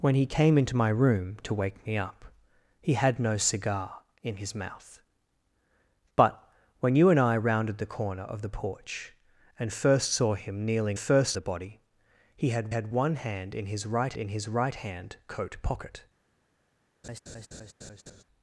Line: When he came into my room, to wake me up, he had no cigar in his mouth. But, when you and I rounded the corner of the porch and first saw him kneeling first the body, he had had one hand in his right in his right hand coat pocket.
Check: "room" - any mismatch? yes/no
no